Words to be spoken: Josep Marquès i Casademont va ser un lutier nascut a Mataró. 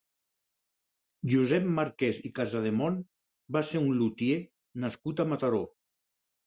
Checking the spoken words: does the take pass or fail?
pass